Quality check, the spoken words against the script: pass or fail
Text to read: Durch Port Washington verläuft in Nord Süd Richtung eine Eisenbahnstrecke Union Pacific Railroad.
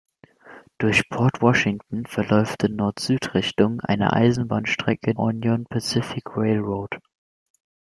pass